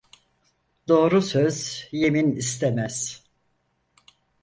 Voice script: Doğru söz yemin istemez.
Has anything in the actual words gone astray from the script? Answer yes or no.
no